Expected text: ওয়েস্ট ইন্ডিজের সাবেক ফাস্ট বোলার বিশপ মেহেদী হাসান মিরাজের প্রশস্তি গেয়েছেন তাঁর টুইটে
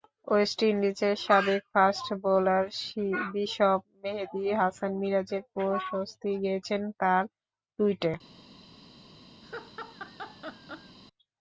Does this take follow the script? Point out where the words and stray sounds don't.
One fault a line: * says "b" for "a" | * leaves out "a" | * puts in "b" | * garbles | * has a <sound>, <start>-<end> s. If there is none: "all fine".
* has a laugh, 9.4-11.0 s